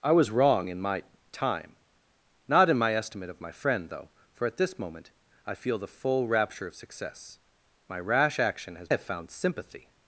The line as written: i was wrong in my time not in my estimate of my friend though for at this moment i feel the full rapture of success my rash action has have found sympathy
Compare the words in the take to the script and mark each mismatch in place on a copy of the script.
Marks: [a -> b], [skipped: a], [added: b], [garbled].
i was wrong in my time not in my estimate of my friend though for at this moment i feel the full rapture of success my rash action has have found sympathy